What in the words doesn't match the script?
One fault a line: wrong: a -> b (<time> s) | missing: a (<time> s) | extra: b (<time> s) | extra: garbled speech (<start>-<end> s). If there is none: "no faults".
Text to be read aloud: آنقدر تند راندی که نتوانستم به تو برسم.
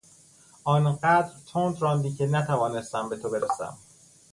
no faults